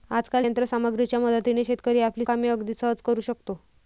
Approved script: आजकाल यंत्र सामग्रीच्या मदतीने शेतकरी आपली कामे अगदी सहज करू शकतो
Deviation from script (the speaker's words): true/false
false